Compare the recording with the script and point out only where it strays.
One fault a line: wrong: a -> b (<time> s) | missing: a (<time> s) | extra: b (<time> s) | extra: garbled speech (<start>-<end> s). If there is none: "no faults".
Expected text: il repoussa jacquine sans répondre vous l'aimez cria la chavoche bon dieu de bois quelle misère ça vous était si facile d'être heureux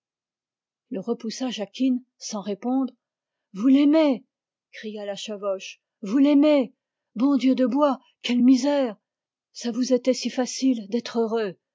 extra: vous l'aimez (6.0 s)